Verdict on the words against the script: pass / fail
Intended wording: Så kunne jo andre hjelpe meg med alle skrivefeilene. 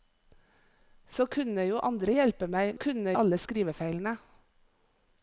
fail